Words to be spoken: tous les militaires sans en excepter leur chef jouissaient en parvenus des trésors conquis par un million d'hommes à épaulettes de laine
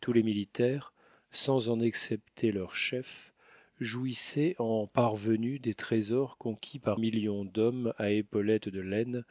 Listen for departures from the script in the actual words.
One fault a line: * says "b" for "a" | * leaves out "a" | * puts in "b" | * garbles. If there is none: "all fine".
* leaves out "un"